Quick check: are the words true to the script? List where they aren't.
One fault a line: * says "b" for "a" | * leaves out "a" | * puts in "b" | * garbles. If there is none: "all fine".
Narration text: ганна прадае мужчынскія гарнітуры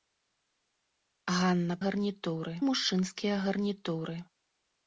* says "гарнітуры" for "прадае"